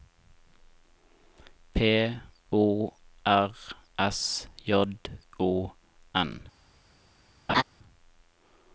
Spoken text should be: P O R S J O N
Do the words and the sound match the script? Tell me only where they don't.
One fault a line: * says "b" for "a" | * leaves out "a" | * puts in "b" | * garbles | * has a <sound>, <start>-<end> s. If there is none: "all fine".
* has a laugh, 7.5-7.6 s